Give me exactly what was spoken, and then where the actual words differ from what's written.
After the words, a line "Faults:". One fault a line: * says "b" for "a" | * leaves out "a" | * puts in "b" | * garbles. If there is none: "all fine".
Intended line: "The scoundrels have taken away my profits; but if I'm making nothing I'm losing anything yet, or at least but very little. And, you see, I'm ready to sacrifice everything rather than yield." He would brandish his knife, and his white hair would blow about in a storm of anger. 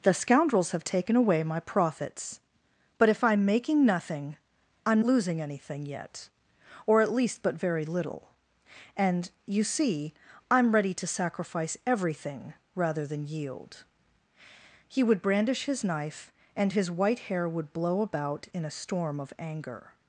"The scoundrels have taken away my profits; but if I'm making nothing I'm losing anything yet, or at least but very little. And, you see, I'm ready to sacrifice everything rather than yield." He would brandish his knife, and his white hair would blow about in a storm of anger.
Faults:
all fine